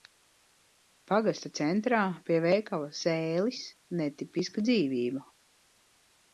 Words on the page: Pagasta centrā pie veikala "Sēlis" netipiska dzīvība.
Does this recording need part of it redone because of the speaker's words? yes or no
no